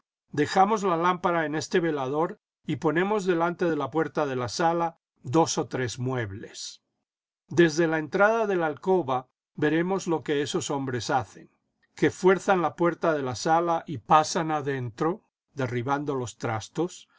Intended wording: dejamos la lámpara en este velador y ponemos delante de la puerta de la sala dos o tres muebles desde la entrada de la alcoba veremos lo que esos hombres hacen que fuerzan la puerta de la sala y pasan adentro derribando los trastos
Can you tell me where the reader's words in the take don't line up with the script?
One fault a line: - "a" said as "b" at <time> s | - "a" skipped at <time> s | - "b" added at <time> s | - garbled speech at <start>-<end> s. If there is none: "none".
none